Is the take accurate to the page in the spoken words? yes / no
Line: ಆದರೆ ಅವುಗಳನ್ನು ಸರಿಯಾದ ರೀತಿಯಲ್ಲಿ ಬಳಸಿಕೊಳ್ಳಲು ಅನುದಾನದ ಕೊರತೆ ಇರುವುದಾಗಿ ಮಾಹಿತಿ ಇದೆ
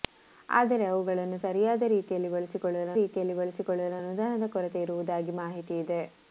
no